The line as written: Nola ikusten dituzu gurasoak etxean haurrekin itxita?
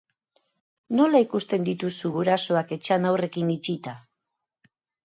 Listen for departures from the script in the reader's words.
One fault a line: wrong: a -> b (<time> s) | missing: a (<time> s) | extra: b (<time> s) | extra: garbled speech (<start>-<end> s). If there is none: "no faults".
no faults